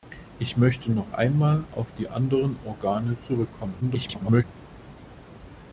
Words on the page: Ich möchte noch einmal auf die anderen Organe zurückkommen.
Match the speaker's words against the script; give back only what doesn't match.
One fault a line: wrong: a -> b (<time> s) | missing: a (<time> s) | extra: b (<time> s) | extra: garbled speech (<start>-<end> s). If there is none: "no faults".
extra: garbled speech (3.8-4.4 s)